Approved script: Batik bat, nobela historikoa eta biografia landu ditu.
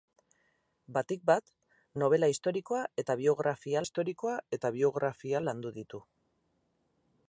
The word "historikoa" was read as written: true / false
true